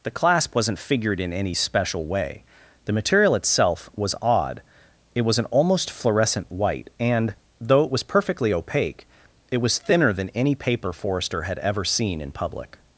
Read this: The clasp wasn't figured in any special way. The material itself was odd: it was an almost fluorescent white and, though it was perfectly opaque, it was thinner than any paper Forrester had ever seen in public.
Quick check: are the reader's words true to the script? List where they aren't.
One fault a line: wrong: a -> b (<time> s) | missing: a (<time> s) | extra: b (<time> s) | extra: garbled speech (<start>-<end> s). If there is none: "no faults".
no faults